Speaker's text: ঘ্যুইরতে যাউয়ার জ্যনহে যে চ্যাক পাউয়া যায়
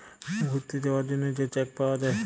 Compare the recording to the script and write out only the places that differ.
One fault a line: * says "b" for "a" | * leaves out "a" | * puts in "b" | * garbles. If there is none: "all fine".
all fine